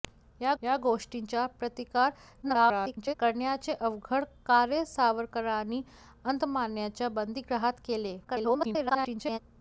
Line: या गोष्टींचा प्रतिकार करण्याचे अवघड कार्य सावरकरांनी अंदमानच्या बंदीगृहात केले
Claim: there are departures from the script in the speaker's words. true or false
true